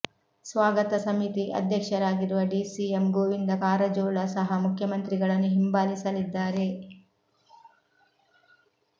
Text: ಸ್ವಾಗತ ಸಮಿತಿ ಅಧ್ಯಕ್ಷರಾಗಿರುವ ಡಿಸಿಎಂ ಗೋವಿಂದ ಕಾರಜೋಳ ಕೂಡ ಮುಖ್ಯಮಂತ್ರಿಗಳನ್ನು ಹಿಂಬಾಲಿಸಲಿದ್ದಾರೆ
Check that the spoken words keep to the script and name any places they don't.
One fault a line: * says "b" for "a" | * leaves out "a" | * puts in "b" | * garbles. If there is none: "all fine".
* says "ಸಹ" for "ಕೂಡ"